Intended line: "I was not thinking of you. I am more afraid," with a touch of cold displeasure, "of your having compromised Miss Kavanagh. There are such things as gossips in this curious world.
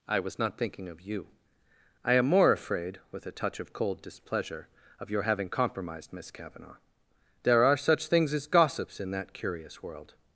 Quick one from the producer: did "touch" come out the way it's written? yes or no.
yes